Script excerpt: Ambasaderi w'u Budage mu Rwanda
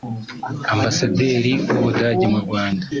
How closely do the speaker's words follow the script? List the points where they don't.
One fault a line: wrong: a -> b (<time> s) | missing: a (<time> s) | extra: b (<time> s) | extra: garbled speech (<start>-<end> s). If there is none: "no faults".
no faults